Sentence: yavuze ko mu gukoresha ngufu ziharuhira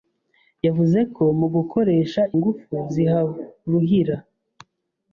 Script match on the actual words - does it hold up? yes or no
yes